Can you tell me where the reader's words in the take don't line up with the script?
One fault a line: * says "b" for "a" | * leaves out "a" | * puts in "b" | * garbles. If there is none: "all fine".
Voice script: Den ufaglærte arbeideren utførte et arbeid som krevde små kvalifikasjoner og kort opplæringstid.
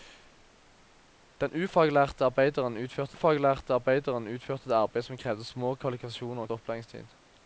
* puts in "ufaglærte arbeideren utførte"
* leaves out "kort"